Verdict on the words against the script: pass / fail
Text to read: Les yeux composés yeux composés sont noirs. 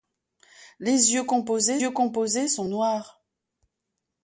pass